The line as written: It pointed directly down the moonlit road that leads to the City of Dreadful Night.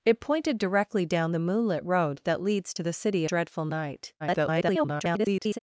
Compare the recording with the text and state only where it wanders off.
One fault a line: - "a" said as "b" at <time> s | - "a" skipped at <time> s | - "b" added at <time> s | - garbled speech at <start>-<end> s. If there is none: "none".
- "of" skipped at 3.2 s
- garbled speech at 4.2-5.6 s